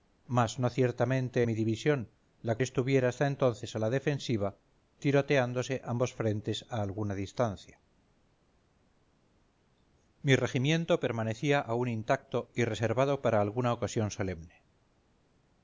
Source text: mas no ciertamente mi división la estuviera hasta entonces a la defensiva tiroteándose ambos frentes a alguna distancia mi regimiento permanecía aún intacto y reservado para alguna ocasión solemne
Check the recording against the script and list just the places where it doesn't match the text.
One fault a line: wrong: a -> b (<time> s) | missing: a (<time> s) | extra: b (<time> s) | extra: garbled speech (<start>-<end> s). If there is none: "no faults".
no faults